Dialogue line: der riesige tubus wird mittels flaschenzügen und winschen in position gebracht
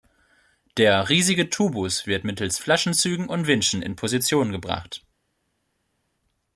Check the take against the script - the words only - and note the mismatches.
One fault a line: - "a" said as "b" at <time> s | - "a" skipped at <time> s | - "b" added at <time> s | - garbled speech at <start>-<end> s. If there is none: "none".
none